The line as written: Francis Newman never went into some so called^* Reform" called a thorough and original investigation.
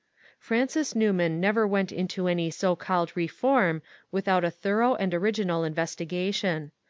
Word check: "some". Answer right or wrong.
wrong